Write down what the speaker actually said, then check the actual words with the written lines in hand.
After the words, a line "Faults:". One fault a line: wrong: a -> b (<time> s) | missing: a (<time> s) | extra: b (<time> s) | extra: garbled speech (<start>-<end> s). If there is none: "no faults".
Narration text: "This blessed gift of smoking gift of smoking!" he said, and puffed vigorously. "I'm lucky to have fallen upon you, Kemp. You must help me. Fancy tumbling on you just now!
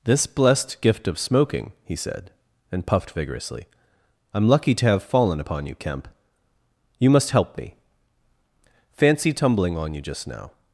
"This blessed gift of smoking!" he said, and puffed vigorously. "I'm lucky to have fallen upon you, Kemp. You must help me. Fancy tumbling on you just now!
Faults:
missing: gift of smoking (1.7 s)